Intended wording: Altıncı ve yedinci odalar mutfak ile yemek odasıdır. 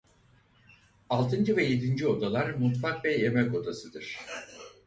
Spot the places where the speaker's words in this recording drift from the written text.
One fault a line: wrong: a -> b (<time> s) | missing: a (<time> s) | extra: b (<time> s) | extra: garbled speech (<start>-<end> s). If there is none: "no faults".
wrong: ile -> ve (3.0 s)